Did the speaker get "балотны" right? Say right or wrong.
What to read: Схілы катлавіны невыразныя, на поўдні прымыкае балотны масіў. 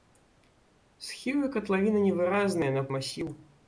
wrong